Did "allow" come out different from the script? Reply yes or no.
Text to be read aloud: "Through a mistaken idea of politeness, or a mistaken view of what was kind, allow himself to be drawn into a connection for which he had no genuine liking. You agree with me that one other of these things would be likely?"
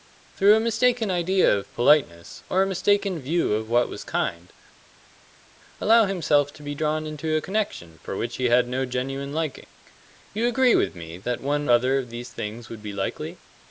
no